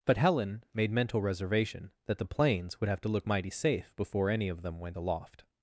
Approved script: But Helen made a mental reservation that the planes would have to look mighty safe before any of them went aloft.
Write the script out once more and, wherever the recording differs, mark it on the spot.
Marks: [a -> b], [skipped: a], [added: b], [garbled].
But Helen made [skipped: a] mental reservation that the planes would have to look mighty safe before any of them went aloft.